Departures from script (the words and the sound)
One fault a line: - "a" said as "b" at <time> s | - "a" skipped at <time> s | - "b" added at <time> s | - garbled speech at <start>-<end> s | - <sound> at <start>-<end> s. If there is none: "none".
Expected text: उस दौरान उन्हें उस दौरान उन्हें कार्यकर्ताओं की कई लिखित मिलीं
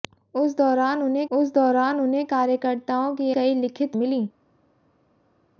none